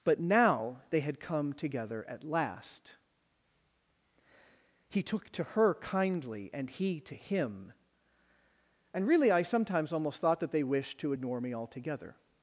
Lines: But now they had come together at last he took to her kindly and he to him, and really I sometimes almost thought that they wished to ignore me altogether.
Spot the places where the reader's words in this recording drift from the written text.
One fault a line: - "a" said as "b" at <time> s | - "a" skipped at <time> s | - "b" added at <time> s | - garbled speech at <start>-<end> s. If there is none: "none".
none